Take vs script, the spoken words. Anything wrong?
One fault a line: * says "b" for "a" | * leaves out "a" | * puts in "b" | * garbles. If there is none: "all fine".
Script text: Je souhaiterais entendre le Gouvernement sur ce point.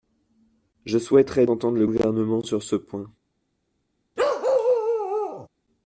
all fine